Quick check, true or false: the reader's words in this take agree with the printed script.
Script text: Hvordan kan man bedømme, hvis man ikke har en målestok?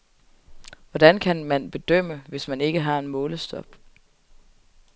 true